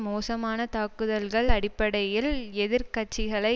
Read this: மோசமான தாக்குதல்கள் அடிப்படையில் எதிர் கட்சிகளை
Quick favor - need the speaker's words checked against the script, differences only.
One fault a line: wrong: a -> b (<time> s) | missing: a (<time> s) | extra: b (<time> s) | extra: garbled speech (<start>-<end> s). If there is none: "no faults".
no faults